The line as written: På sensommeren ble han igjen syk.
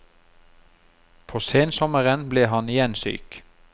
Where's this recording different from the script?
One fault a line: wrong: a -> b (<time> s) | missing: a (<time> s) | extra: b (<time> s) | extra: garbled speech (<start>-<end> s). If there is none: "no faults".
no faults